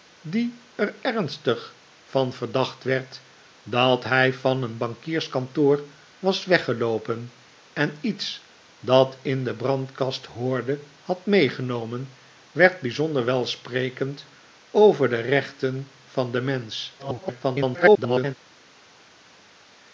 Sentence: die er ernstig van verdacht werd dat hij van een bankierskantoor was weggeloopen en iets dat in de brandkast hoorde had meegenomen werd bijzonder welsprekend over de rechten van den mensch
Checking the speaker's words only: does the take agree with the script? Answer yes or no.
no